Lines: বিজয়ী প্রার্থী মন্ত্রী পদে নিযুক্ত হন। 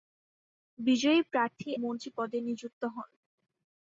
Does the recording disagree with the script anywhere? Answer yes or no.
no